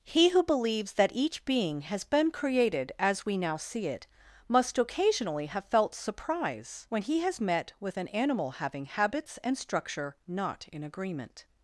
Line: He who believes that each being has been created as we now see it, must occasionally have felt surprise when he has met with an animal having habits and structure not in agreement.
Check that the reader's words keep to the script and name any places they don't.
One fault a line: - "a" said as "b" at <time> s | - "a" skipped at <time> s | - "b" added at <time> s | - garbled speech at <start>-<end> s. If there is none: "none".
none